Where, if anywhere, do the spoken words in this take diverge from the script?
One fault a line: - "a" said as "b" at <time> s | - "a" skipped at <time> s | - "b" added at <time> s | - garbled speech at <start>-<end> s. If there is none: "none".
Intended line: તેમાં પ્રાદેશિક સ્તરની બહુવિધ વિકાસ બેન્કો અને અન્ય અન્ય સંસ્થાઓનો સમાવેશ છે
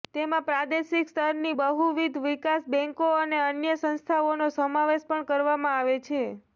- "અન્ય" skipped at 3.8 s
- "પણ કરવામાં આવે" added at 5.1 s